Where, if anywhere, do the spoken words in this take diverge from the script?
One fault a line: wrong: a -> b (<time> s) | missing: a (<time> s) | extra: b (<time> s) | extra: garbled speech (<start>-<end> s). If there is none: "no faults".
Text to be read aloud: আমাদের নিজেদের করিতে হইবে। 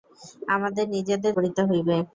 no faults